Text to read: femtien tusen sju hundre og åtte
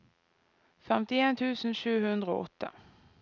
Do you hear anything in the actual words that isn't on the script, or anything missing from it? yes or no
no